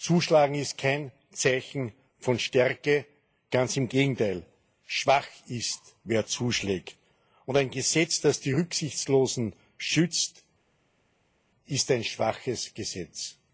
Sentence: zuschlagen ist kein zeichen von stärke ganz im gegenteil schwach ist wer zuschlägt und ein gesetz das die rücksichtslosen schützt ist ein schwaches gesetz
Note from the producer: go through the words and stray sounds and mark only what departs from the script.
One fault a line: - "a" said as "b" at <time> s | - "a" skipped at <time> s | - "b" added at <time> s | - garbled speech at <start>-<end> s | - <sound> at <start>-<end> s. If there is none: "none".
none